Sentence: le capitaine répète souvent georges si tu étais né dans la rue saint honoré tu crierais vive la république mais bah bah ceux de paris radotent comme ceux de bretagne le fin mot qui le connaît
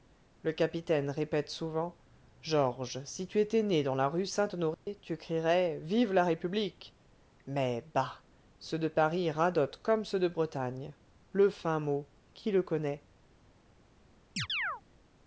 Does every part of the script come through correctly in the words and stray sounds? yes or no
no